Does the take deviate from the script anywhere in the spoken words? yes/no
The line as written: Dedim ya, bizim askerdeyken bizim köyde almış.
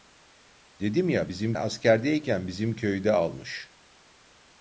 no